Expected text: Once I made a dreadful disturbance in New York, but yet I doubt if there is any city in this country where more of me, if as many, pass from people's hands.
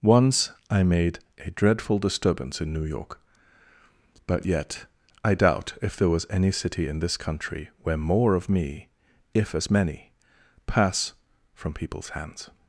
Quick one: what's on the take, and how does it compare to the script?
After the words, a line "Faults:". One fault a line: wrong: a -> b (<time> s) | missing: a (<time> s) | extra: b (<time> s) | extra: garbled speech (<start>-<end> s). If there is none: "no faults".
Once I made a dreadful disturbance in New York, but yet I doubt if there was any city in this country where more of me, if as many, pass from people's hands.
Faults:
wrong: is -> was (6.1 s)